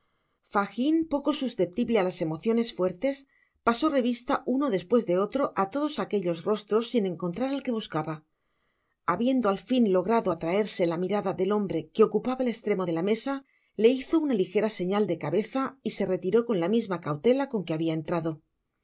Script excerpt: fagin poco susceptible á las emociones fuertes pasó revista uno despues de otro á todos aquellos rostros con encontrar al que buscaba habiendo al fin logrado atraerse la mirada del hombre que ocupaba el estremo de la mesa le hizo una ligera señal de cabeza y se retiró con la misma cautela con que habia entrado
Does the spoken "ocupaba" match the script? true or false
true